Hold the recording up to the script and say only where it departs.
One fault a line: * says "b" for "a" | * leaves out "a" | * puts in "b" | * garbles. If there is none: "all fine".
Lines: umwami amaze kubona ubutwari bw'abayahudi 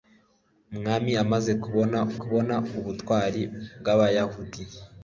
* puts in "kubona"